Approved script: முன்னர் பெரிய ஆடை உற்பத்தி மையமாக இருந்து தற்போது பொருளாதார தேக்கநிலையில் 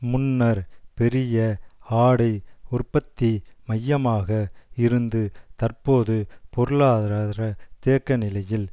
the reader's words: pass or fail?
pass